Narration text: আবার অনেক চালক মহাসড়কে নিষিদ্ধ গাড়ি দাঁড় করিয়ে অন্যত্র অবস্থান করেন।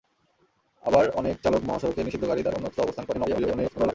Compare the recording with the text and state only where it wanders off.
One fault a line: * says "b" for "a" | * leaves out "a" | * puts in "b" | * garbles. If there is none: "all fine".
* leaves out "করিয়ে"
* garbles